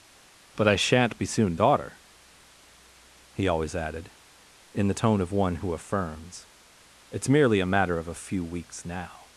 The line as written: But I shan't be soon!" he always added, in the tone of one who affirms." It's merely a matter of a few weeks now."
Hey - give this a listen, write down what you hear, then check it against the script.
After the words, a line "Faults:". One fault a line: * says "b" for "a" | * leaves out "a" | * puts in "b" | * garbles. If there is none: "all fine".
But I shan't be soon!" daughter he always added, in the tone of one who affirms." It's merely a matter of a few weeks now."
Faults:
* puts in "daughter"